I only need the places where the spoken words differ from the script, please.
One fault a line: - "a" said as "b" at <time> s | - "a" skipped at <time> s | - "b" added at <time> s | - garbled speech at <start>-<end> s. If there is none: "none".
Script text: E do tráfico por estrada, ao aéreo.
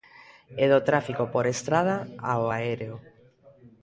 none